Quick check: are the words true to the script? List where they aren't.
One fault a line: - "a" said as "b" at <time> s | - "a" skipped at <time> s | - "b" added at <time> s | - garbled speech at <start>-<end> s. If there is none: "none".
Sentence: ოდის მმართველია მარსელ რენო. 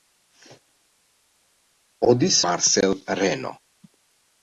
- "მმართველია" skipped at 2.4 s